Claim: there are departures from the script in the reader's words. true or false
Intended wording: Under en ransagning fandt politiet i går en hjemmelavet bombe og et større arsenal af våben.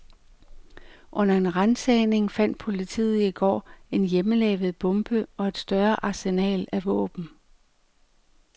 false